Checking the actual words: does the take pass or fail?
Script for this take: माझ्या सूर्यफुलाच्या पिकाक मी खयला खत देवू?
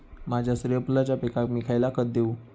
pass